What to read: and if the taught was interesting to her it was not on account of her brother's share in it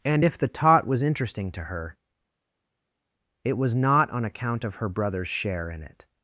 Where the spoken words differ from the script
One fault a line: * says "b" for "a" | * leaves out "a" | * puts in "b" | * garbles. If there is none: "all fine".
all fine